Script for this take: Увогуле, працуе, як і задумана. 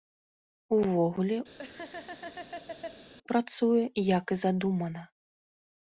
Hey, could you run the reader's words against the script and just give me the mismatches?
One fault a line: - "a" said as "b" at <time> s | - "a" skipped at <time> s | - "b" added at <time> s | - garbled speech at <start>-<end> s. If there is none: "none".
none